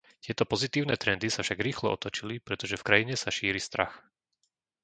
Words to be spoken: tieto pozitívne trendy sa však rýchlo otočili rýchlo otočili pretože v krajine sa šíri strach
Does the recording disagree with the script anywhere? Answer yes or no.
yes